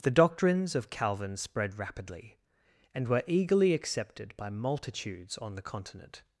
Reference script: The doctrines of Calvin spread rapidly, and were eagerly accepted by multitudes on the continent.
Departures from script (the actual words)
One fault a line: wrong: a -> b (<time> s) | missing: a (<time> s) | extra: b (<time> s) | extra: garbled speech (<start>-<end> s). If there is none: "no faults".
no faults